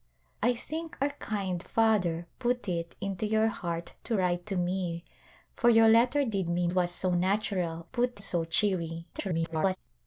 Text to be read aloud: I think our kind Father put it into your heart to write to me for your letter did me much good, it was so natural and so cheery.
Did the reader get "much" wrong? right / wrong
wrong